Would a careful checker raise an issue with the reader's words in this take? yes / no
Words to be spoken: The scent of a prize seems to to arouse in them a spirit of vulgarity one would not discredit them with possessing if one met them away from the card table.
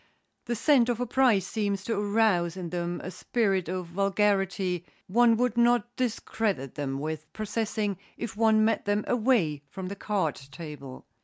yes